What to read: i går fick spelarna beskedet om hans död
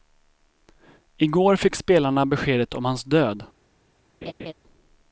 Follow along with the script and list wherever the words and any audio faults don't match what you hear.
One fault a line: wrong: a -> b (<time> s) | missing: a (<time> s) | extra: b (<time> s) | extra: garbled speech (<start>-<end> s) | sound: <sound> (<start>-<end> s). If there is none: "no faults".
sound: laugh (4.2-4.5 s)